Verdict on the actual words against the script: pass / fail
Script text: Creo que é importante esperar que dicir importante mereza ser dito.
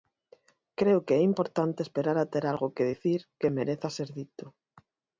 fail